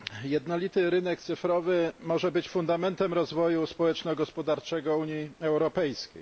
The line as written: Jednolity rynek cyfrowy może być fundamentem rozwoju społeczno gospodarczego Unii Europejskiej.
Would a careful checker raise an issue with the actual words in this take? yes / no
no